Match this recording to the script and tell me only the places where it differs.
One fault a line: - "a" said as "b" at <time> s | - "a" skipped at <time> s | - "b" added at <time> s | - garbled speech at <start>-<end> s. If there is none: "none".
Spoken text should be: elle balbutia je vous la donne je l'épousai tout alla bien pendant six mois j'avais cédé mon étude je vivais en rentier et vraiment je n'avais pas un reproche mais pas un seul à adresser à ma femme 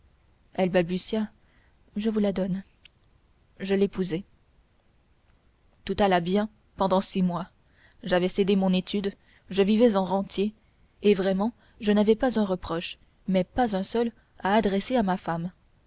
none